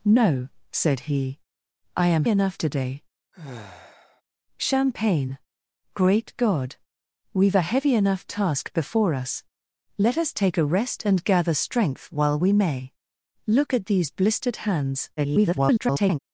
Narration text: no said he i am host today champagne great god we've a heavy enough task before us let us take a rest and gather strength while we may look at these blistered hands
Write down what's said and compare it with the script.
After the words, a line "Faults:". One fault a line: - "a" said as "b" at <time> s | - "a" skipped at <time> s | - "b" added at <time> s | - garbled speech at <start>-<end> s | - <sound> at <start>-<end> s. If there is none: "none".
no said he i am enough today champagne great god we've a heavy enough task before us let us take a rest and gather strength while we may look at these blistered hands [garbled]
Faults:
- "host" said as "enough" at 2.3 s
- sigh at 3.3-4.2 s
- garbled speech at 15.2-16.2 s